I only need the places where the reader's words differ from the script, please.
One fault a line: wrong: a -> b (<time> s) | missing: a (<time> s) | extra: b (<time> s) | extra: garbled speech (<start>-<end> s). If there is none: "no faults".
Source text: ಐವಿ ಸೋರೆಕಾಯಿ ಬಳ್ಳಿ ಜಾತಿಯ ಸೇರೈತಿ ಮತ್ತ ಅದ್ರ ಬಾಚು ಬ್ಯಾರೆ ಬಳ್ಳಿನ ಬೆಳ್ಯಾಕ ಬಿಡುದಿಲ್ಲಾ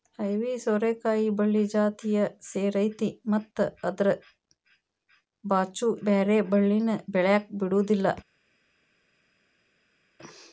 no faults